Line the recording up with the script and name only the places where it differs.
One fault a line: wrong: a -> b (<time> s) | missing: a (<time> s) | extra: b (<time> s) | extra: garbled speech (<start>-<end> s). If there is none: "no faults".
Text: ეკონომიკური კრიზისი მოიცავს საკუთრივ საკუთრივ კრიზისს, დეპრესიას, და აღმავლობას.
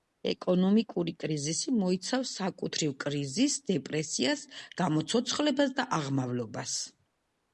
missing: საკუთრივ (3.0 s)
extra: გამოცოცხლებას (4.8 s)